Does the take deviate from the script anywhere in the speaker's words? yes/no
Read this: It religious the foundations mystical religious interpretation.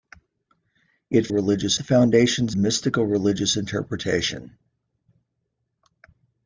no